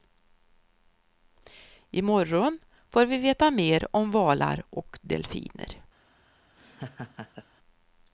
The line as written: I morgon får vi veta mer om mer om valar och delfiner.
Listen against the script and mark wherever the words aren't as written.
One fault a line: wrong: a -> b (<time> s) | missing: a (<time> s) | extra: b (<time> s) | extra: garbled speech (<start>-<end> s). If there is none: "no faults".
missing: mer om (4.1 s)